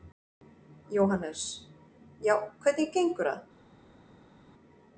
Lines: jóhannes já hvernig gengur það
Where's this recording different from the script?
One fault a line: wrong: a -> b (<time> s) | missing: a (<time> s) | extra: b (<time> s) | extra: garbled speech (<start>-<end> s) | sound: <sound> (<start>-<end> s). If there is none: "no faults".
no faults